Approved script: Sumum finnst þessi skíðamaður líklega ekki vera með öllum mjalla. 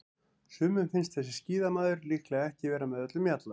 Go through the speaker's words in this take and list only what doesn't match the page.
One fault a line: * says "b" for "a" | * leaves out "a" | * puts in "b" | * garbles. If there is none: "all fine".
all fine